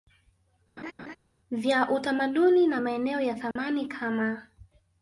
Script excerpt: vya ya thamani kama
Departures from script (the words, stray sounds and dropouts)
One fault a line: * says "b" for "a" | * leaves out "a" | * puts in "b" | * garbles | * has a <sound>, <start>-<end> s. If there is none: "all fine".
* has a laugh, 0.8-1.2 s
* puts in "utamaduni na maeneo"
* has a dropout, 3.5-3.6 s